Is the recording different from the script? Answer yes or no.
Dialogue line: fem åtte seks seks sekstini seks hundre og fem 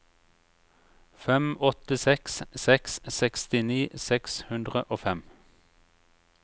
no